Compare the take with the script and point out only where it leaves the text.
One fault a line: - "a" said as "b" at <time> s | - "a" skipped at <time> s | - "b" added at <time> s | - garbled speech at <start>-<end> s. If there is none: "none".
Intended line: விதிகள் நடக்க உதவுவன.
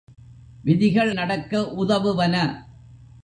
none